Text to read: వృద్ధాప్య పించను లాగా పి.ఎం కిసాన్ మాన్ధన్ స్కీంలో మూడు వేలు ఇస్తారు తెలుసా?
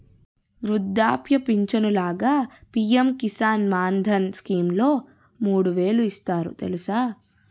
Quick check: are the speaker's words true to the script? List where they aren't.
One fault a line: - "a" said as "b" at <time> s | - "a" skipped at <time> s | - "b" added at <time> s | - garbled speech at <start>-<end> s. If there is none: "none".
none